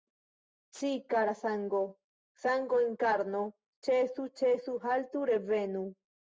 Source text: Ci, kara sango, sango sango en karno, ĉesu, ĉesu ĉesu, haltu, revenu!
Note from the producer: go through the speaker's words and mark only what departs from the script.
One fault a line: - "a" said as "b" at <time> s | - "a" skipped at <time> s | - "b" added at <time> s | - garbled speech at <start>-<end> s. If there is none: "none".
- "sango" skipped at 2.8 s
- "ĉesu" skipped at 4.8 s